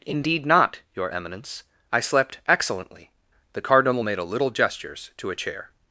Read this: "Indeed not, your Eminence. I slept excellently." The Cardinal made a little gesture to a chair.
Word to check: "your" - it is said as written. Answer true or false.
true